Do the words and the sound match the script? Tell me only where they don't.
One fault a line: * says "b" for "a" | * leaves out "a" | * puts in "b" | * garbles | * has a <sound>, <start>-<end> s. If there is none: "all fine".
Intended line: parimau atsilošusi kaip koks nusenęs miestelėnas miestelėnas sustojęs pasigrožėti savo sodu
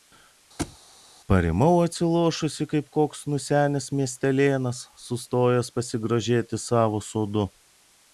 * has a thud, 0.6-0.8 s
* leaves out "miestelėnas"